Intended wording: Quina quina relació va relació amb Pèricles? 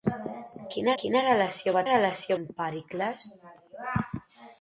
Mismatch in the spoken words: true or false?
false